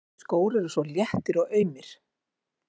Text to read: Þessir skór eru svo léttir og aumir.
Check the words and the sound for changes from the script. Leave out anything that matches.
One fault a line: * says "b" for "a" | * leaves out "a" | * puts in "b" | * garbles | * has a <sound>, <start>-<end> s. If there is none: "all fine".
all fine